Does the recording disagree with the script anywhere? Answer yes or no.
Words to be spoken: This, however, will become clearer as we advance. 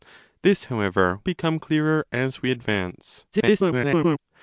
yes